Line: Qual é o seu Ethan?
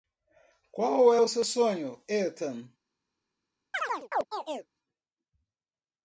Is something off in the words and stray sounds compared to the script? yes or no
yes